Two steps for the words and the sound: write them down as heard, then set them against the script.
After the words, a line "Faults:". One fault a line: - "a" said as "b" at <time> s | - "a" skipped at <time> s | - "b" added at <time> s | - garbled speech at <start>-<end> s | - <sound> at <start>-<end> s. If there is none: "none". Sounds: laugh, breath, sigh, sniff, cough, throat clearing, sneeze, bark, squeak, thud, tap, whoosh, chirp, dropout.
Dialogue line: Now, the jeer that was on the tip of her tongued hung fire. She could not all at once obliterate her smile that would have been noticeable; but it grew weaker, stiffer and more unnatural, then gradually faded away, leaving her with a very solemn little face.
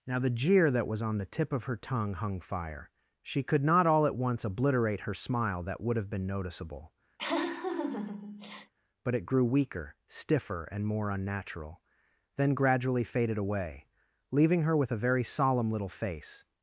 Now, the jeer that was on the tip of her tongue hung fire. She could not all at once obliterate her smile that would have been noticeable; but it grew weaker, stiffer and more unnatural, then gradually faded away, leaving her with a very solemn little face.
Faults:
- "tongued" said as "tongue" at 1.8 s
- laugh at 7.2-8.7 s